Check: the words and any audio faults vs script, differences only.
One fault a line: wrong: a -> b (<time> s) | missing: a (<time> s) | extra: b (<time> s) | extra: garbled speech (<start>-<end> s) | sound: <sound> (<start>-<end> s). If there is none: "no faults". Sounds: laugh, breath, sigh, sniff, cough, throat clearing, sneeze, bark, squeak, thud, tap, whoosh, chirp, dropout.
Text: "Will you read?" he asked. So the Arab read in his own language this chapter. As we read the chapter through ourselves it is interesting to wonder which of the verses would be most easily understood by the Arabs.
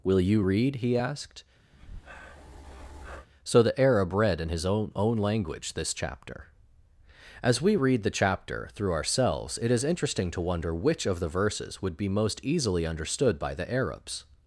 sound: breath (1.7-3.3 s)
extra: own (5.0 s)